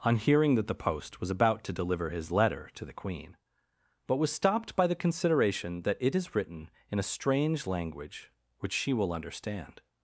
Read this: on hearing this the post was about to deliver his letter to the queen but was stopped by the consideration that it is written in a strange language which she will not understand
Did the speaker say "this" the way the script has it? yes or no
no